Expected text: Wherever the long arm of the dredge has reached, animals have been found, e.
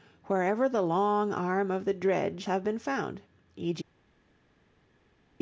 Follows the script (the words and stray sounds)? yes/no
no